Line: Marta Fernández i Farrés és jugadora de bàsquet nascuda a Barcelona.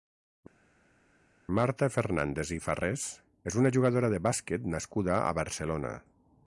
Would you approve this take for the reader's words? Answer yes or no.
no